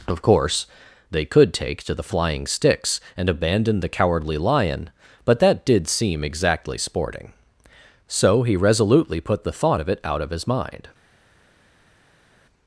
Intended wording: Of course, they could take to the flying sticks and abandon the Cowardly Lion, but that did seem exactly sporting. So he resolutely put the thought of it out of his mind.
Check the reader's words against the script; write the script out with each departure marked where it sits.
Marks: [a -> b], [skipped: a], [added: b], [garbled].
Of course, they could take to the flying sticks and abandon the Cowardly Lion, but that did seem exactly sporting. So he resolutely put the thought of it out of his mind.